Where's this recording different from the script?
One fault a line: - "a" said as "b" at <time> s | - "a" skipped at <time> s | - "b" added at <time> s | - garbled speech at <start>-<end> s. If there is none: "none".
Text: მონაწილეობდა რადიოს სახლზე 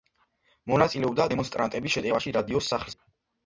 - "დემონსტრანტების შეტევაში" added at 1.3 s